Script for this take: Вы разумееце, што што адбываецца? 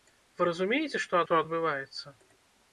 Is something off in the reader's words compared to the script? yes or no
no